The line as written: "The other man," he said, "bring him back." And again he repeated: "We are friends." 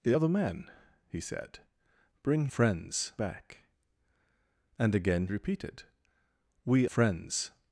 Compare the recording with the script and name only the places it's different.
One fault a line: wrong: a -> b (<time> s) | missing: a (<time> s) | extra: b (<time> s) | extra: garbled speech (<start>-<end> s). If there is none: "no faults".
wrong: him -> friends (2.5 s)
missing: he (5.3 s)
missing: are (6.9 s)